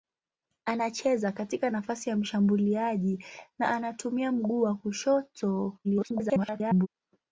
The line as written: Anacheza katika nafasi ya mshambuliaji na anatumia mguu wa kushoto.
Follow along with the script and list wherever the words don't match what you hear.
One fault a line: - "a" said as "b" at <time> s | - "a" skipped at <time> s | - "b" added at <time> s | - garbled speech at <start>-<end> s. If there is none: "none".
- garbled speech at 5.8-6.9 s